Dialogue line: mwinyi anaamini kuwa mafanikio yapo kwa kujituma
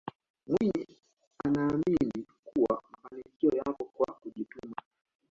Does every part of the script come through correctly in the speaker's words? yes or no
yes